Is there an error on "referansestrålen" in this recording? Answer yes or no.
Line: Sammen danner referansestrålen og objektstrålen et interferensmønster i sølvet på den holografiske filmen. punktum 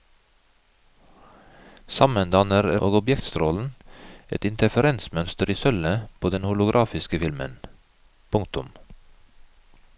yes